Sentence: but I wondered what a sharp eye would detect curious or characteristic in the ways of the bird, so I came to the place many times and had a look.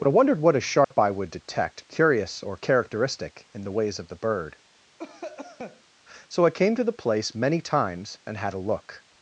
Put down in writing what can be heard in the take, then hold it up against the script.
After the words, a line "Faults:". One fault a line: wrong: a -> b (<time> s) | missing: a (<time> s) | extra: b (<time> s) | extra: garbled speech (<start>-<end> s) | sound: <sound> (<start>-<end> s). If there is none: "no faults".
but I wondered what a sharp eye would detect curious or characteristic in the ways of the bird, so I came to the place many times and had a look.
Faults:
sound: dropout (0.8-0.9 s)
sound: cough (5.0-5.8 s)